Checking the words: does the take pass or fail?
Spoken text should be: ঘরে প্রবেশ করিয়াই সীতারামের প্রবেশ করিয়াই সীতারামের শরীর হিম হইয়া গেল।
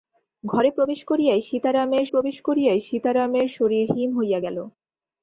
pass